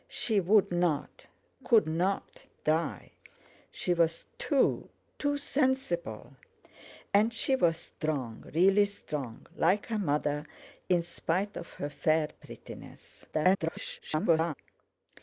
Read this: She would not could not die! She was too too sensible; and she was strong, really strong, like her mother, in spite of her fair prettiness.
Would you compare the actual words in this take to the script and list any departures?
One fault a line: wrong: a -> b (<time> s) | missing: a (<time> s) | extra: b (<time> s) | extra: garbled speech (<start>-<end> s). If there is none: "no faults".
extra: garbled speech (13.3-14.5 s)